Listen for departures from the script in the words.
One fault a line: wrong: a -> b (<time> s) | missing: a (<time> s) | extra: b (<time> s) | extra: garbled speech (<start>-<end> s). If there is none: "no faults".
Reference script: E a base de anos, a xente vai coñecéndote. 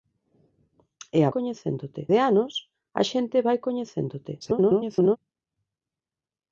wrong: base -> coñecéndote (1.3 s)
extra: garbled speech (4.4-5.2 s)